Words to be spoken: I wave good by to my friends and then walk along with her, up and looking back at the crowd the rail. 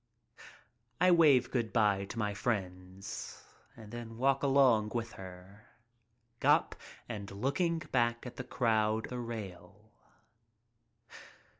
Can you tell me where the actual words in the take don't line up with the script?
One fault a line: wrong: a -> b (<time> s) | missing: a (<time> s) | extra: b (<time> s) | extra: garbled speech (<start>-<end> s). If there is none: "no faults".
no faults